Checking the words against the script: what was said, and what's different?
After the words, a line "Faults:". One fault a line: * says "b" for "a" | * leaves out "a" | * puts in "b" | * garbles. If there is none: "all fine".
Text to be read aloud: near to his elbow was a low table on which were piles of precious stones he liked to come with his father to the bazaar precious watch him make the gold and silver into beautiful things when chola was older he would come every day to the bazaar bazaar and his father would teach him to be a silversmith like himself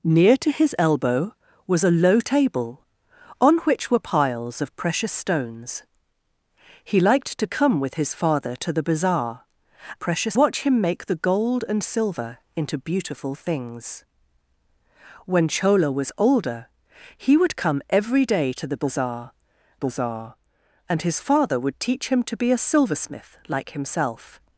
near to his elbow was a low table on which were piles of precious stones he liked to come with his father to the bazaar precious watch him make the gold and silver into beautiful things when chola was older he would come every day to the bazaar bazaar and his father would teach him to be a silversmith like himself
Faults:
all fine